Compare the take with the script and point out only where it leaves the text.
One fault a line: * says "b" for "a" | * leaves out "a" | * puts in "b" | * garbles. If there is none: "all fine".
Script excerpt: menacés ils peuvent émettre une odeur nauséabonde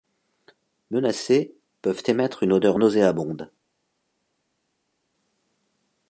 * leaves out "ils"